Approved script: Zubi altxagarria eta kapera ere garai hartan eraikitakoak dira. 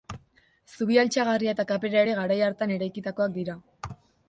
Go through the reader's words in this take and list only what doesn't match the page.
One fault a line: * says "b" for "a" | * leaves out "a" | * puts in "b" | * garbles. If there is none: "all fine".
all fine